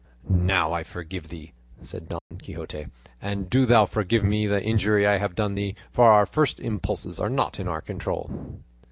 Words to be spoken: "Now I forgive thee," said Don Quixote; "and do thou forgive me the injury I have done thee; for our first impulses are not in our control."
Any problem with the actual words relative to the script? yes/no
no